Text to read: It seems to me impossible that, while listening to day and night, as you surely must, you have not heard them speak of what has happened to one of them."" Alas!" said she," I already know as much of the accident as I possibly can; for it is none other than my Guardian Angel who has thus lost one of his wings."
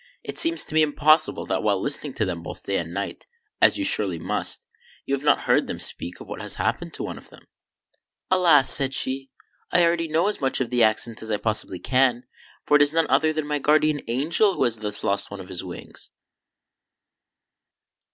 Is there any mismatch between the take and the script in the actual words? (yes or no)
yes